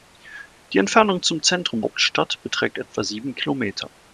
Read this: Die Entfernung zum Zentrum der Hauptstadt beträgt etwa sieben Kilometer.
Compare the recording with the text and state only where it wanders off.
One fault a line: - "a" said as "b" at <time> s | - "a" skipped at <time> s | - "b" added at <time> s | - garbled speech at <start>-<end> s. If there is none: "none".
- "der" skipped at 1.8 s